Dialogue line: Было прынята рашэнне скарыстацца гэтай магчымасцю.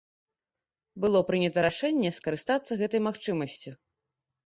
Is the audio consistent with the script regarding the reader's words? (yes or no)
yes